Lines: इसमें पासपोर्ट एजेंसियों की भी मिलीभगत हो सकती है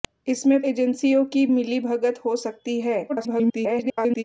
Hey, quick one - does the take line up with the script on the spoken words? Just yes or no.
no